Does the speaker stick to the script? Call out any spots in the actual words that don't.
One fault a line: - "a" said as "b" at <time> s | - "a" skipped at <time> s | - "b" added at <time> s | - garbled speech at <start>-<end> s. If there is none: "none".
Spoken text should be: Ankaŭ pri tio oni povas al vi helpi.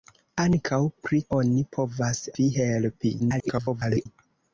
- "tio" skipped at 1.2 s
- "al" skipped at 2.2 s
- garbled speech at 3.2-4.1 s